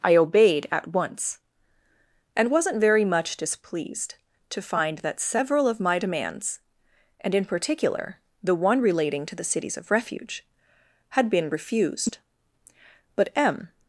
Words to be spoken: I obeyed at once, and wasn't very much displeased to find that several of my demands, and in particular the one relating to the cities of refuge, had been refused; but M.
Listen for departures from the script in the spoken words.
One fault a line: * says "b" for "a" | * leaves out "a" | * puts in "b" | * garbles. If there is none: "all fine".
all fine